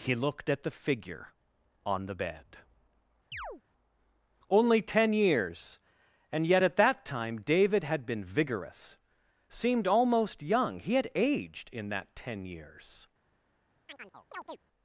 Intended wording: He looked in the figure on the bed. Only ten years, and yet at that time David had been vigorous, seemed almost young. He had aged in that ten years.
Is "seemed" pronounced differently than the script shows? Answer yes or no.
no